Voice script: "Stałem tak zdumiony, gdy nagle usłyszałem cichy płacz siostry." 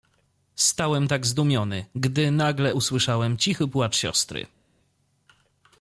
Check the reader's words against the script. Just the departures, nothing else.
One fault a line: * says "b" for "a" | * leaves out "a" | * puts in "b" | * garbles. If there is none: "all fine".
all fine